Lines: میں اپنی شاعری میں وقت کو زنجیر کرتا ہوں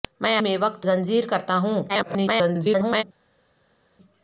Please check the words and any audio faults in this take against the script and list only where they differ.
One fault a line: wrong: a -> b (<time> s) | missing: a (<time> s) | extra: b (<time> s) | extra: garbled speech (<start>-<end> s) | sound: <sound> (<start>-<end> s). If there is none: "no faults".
missing: اپنی شاعری (0.4 s)
missing: کو (0.8 s)
extra: garbled speech (1.9-3.0 s)